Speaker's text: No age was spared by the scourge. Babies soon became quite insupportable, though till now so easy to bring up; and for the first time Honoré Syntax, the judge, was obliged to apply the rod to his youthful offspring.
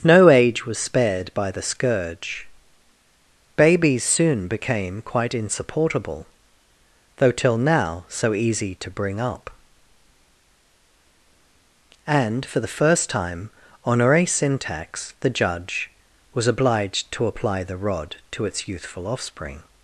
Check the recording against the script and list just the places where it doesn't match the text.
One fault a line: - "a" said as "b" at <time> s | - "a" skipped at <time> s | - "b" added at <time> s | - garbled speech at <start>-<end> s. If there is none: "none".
- "his" said as "its" at 18.4 s